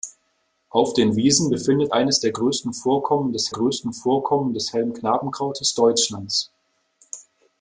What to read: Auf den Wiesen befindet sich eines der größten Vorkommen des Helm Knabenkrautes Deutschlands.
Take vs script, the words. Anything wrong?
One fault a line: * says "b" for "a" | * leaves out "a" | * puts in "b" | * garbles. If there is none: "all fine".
* leaves out "sich"
* puts in "größten Vorkommen des"